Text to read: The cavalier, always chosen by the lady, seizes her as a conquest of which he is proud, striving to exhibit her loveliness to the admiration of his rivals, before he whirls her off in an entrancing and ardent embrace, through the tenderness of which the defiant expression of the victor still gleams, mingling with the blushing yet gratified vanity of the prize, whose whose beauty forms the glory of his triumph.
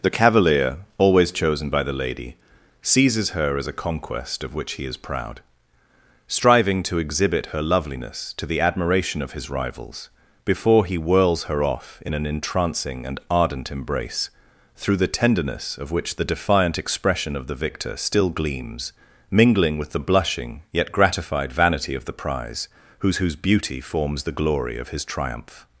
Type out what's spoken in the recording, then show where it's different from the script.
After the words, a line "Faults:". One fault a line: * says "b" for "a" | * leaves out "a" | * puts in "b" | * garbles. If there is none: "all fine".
The cavalier, always chosen by the lady, seizes her as a conquest of which he is proud, striving to exhibit her loveliness to the admiration of his rivals, before he whirls her off in an entrancing and ardent embrace, through the tenderness of which the defiant expression of the victor still gleams, mingling with the blushing yet gratified vanity of the prize, whose whose beauty forms the glory of his triumph.
Faults:
all fine